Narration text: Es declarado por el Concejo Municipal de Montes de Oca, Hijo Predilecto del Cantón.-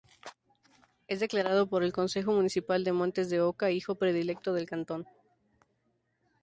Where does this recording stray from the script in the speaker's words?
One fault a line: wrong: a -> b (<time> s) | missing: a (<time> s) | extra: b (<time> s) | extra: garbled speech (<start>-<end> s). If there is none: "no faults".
no faults